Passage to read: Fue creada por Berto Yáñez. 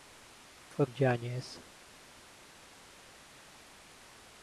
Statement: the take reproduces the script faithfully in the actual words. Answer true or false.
false